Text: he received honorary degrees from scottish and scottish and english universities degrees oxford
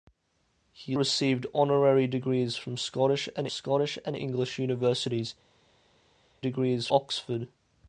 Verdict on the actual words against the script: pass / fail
pass